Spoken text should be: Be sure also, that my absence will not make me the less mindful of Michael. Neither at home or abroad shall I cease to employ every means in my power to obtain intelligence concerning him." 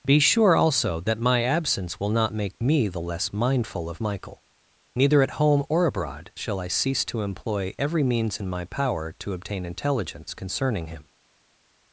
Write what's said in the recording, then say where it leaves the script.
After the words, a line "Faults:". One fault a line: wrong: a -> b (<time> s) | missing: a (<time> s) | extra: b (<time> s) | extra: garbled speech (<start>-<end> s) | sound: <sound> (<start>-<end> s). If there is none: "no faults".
Be sure also, that my absence will not make me the less mindful of Michael. Neither at home or abroad shall I cease to employ every means in my power to obtain intelligence concerning him."
Faults:
no faults